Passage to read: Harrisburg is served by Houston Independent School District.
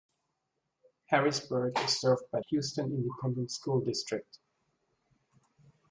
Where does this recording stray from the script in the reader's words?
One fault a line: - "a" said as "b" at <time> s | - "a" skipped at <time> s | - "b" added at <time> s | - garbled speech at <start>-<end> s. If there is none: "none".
none